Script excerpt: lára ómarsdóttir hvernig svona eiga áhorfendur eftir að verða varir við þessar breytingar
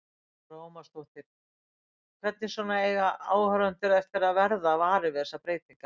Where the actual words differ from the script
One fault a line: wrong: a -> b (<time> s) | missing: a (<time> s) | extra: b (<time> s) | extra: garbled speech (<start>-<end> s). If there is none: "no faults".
no faults